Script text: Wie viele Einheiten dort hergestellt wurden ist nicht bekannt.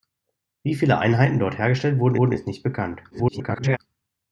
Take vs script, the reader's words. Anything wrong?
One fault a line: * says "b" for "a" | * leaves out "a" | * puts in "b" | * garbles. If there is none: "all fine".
* puts in "wurden"
* garbles